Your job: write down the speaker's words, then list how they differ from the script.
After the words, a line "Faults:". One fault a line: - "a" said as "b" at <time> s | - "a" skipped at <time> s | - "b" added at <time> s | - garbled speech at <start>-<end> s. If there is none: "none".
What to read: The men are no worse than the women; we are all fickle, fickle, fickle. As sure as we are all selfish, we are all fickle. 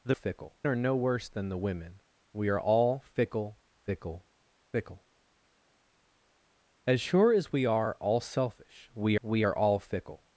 The fickle are no worse than the women; we are all fickle, fickle, fickle. As sure as we are all selfish, we we are all fickle.
Faults:
- "men" said as "fickle" at 0.1 s
- "we" added at 9.2 s